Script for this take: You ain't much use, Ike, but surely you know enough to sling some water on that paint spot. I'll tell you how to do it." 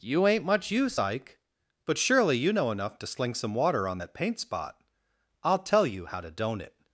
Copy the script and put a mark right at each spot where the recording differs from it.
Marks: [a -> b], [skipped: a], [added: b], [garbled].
You ain't much use, Ike, but surely you know enough to sling some water on that paint spot. I'll tell you how to [do -> don't] it."